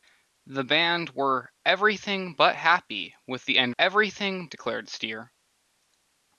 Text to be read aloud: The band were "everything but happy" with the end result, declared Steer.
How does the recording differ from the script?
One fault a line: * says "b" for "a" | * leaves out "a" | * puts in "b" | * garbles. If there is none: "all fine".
* says "everything" for "result"